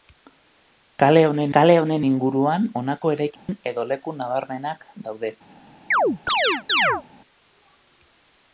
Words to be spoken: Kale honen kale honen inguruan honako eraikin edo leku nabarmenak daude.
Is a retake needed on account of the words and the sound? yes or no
yes